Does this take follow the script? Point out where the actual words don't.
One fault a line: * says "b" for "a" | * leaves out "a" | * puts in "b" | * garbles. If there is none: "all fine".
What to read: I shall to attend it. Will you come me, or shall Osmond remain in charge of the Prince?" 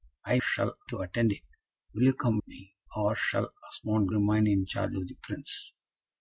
all fine